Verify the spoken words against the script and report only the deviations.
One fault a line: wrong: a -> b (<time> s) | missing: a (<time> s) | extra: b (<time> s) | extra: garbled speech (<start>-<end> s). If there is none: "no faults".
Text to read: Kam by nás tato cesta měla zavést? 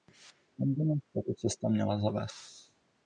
no faults